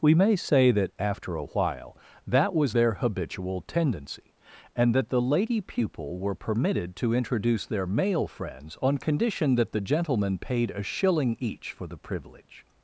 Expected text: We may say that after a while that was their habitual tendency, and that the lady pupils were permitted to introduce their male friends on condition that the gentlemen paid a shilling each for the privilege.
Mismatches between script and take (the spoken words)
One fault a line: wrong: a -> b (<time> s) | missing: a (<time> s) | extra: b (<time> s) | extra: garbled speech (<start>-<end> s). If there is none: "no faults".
wrong: pupils -> pupil (5.6 s)